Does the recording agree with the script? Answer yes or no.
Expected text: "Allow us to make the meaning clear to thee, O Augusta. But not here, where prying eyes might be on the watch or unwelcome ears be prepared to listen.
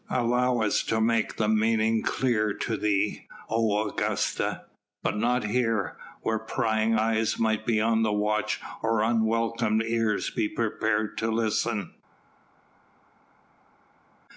yes